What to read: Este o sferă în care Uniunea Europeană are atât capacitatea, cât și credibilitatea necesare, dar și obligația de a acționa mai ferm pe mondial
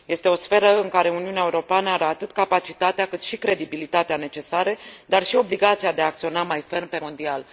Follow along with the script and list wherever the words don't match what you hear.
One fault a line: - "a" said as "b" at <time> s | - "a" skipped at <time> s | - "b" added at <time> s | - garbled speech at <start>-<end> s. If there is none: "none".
none